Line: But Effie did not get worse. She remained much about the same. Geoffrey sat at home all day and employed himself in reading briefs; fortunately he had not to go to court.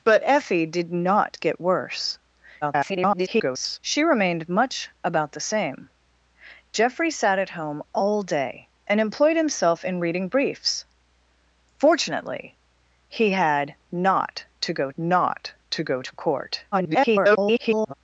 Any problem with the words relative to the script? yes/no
yes